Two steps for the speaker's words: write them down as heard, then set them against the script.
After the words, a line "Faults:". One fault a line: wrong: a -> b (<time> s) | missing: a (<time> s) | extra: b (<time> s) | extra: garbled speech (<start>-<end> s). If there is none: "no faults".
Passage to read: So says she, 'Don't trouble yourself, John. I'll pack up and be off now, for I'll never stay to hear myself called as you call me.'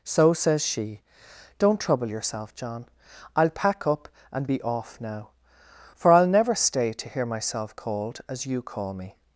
So says she, 'Don't trouble yourself, John. I'll pack up and be off now, for I'll never stay to hear myself called as you call me.'
Faults:
no faults